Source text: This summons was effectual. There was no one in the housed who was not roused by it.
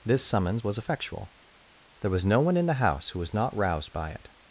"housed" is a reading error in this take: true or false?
true